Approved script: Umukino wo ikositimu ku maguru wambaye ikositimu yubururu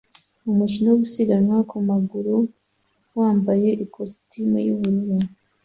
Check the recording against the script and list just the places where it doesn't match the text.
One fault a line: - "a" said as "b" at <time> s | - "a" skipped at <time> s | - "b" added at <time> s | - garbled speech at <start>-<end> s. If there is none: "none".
- "ikositimu" said as "gusiganwa" at 1.0 s